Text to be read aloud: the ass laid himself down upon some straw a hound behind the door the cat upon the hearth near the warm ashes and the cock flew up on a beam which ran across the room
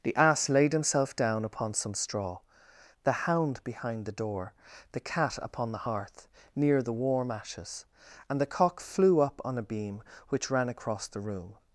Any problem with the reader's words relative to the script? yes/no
yes